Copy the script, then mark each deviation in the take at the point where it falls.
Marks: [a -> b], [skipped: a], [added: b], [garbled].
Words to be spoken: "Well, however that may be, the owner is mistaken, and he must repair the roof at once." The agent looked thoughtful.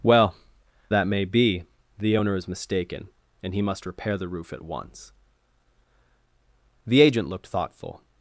"Well, [skipped: however] that may be, the owner is mistaken, and he must repair the roof at once." The agent looked thoughtful.